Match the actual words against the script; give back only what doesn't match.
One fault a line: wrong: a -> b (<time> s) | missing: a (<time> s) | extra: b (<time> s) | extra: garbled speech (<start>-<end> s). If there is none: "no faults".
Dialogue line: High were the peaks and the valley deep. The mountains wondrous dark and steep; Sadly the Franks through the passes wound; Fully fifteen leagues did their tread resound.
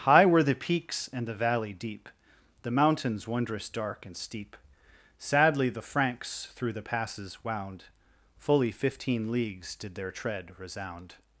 no faults